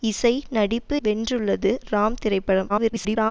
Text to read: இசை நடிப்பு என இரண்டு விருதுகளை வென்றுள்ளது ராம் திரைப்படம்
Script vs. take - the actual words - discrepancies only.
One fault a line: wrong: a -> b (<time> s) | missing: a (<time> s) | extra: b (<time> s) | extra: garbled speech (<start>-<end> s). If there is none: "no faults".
missing: என இரண்டு விருதுகளை (0.9 s)
extra: garbled speech (2.7-3.3 s)